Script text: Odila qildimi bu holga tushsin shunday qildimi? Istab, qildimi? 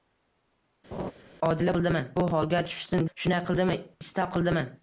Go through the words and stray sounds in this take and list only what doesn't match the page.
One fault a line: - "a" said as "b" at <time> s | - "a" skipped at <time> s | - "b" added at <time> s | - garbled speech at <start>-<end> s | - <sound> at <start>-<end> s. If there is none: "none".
- laugh at 0.9-1.1 s